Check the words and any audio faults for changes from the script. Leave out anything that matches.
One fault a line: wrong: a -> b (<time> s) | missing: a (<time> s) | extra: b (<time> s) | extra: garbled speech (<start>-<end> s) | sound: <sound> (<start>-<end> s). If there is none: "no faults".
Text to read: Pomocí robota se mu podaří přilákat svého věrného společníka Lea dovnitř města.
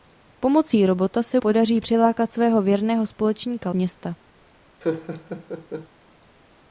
missing: mu (1.4 s)
missing: Lea dovnitř (3.7 s)
sound: laugh (4.8-5.9 s)